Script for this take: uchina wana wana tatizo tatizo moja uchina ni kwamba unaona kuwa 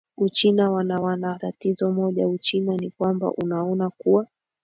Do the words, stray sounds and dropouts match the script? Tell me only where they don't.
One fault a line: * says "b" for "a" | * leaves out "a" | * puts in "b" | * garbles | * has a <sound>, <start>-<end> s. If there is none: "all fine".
* leaves out "tatizo"